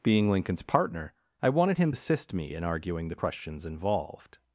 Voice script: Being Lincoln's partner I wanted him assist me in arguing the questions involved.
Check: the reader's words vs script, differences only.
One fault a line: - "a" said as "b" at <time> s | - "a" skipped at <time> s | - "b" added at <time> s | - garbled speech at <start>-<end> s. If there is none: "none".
none